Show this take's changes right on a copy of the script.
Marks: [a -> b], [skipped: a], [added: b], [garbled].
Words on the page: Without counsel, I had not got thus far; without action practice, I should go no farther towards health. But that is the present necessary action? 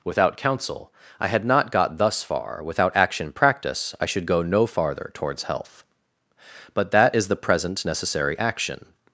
Without counsel, I had not got thus far; without action practice, I should go no farther towards health. But that is the present necessary action?